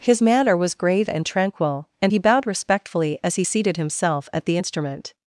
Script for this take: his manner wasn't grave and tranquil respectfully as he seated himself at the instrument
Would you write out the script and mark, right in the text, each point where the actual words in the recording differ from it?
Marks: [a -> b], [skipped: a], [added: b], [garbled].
his manner [wasn't -> was] grave and tranquil [added: and he bowed] respectfully as he seated himself at the instrument